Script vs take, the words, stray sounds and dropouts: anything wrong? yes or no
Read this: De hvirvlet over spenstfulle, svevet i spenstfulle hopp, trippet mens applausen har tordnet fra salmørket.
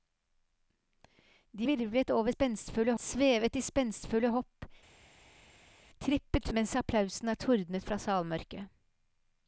no